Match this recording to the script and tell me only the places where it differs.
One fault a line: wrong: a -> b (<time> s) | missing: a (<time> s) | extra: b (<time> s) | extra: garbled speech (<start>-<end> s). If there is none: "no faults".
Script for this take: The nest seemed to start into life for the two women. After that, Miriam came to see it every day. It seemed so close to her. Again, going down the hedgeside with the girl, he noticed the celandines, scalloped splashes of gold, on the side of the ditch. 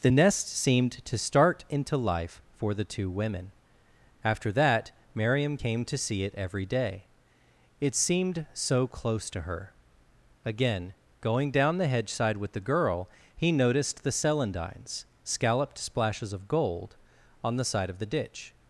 no faults